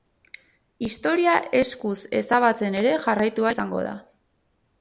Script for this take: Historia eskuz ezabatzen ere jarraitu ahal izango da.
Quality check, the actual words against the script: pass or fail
fail